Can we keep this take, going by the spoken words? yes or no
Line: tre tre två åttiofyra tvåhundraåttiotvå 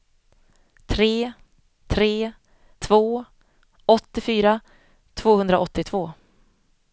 yes